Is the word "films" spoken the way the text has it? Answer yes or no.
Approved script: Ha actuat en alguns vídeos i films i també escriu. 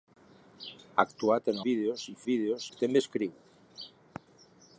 no